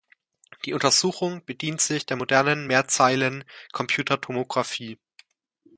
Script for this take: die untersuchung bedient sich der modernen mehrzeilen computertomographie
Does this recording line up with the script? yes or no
yes